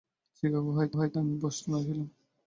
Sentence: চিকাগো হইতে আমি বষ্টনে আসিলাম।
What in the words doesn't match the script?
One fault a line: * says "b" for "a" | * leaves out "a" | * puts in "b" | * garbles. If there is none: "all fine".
* puts in "হইতে"